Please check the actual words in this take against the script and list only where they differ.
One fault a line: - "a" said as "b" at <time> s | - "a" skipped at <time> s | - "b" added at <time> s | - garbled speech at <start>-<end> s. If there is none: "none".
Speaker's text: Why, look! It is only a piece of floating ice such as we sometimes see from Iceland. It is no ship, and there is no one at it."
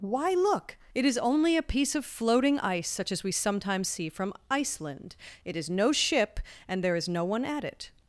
none